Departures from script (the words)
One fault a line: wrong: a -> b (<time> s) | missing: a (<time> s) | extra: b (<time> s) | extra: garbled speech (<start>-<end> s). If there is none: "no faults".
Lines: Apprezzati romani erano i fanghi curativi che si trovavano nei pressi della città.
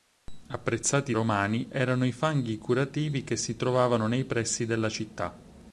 no faults